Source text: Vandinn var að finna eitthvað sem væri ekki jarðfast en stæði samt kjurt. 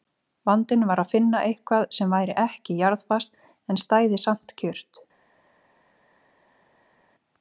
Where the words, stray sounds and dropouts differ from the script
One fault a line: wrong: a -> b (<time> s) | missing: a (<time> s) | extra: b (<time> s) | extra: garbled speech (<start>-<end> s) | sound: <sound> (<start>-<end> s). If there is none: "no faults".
no faults